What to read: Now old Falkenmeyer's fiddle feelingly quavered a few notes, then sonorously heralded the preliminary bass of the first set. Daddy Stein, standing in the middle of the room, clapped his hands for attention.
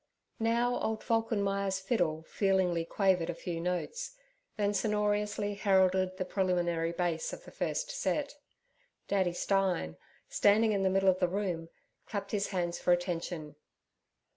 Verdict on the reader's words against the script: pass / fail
pass